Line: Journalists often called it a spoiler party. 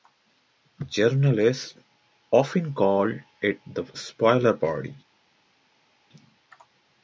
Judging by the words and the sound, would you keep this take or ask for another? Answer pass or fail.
fail